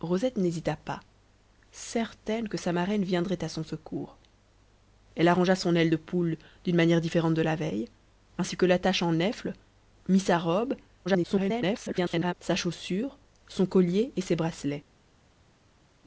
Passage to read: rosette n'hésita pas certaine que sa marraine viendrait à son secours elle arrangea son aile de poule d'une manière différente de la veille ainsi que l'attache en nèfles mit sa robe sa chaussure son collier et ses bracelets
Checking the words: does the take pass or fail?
fail